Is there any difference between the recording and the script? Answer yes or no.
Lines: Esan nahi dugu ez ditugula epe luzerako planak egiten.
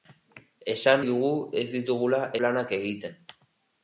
yes